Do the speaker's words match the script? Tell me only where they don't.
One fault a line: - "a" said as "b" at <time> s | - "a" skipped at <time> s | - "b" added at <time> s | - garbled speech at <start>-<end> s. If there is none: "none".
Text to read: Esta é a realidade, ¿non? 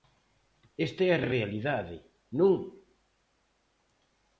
- "a" added at 1.2 s